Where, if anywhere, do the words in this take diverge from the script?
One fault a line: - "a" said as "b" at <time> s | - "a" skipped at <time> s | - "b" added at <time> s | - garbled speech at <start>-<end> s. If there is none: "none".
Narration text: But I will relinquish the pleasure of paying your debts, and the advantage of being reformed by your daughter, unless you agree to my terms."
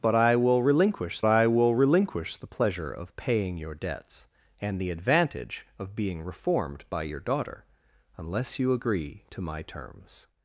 - "I will relinquish" added at 1.3 s